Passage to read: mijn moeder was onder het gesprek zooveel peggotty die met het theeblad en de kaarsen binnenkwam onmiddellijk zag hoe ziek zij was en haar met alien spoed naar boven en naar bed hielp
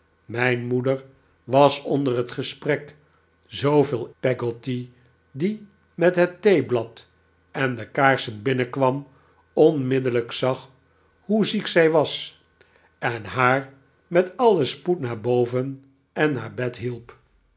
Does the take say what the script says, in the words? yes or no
yes